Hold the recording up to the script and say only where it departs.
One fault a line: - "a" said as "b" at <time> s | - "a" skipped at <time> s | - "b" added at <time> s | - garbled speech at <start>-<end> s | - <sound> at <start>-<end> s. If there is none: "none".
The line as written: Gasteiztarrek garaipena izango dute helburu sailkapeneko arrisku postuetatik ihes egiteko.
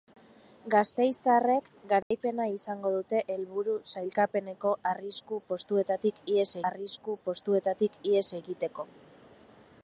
- dropout at 2.0-2.1 s
- "arrisku postuetatik ihes" added at 6.7 s